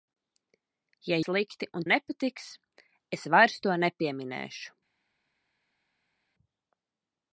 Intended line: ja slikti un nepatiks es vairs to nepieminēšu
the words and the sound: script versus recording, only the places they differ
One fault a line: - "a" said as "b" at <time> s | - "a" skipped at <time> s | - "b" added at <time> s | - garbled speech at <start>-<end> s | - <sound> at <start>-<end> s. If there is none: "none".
none